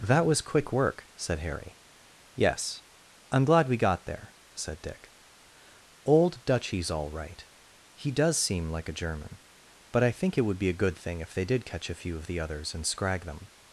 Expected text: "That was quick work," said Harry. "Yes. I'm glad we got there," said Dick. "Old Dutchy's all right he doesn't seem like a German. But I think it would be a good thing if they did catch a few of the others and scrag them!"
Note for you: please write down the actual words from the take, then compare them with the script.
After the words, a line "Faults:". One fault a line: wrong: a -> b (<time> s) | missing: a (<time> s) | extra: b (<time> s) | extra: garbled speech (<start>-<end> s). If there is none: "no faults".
"That was quick work," said Harry. "Yes. I'm glad we got there," said Dick. "Old Dutchy's all right he does seem like a German. But I think it would be a good thing if they did catch a few of the others and scrag them!"
Faults:
wrong: doesn't -> does (8.1 s)